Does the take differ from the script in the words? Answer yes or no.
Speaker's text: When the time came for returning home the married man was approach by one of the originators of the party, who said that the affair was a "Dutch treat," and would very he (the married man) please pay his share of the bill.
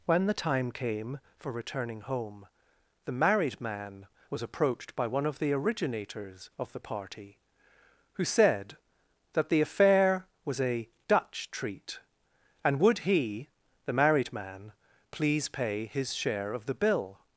yes